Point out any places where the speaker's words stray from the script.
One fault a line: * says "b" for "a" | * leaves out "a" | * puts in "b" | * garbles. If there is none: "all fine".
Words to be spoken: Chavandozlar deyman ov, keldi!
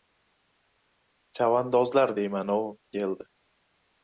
all fine